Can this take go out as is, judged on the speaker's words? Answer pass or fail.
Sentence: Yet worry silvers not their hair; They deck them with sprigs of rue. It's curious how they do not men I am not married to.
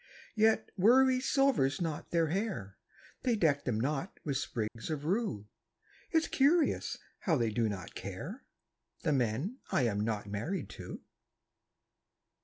fail